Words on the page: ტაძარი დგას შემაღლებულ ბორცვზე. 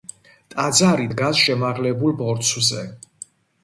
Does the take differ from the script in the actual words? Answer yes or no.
no